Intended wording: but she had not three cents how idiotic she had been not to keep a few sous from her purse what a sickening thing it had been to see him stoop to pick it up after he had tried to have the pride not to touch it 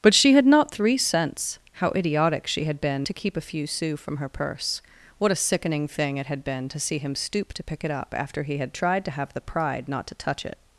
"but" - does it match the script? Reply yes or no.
yes